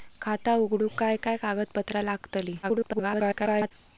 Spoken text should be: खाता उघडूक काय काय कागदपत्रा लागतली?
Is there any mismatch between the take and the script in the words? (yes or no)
yes